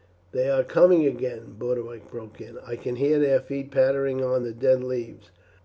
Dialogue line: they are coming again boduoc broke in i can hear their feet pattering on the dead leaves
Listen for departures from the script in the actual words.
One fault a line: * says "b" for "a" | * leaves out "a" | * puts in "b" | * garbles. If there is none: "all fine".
all fine